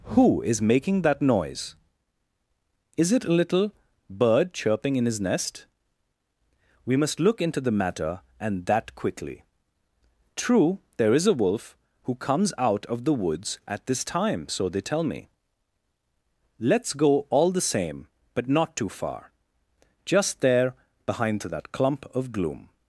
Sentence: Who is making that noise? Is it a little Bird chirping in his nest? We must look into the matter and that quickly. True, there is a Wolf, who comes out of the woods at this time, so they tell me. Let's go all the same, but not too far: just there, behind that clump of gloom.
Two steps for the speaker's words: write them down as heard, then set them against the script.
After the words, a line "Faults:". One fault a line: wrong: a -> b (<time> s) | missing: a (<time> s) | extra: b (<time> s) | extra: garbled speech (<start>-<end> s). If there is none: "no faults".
Who is making that noise? Is it a little Bird chirping in his nest? We must look into the matter and that quickly. True, there is a Wolf, who comes out of the woods at this time, so they tell me. Let's go all the same, but not too far: just there, behind that clump of gloom.
Faults:
no faults